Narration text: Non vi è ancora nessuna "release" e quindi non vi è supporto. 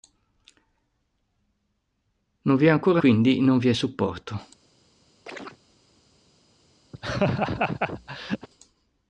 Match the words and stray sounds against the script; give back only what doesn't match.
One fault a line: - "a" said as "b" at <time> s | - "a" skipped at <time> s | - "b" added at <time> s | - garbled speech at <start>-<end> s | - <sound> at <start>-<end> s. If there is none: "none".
- "nessuna release e" skipped at 3.0 s
- chirp at 5.3-5.6 s
- laugh at 6.9-8.5 s